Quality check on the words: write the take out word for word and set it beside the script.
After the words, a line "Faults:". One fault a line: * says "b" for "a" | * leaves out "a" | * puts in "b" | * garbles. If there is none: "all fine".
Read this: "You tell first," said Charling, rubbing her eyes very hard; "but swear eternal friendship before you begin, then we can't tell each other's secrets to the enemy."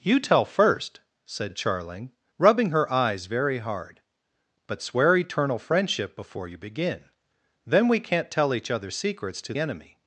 "You tell first," said Charling, rubbing her eyes very hard; "but swear eternal friendship before you begin, then we can't tell each other's secrets to enemy."
Faults:
* leaves out "the"